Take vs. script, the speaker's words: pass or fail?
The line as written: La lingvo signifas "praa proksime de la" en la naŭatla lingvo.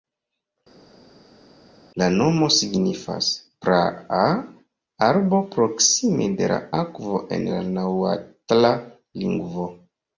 fail